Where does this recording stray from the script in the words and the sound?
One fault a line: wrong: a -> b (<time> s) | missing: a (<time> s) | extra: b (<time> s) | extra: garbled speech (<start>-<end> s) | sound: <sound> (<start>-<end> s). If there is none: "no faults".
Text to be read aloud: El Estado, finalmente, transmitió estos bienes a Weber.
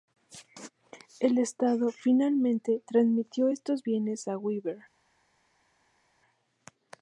no faults